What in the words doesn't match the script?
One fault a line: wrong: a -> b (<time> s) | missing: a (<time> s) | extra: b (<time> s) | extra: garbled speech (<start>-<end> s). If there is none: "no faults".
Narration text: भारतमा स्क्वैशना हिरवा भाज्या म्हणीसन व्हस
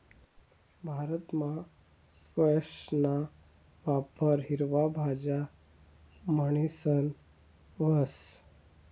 extra: वापर (3.8 s)